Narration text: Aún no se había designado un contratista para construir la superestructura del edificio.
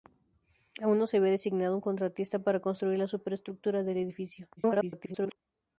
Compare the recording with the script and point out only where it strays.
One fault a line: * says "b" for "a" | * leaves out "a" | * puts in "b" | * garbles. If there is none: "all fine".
* garbles